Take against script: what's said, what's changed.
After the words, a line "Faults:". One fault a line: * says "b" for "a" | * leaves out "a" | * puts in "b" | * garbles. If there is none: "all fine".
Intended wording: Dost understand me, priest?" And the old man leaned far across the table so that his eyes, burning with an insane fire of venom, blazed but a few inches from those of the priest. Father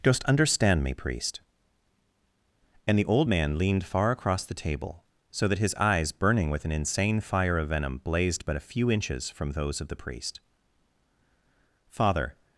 Dost understand me, priest?" And the old man leaned far across the table so that his eyes, burning with an insane fire of venom, blazed but a few inches from those of the priest. Father
Faults:
all fine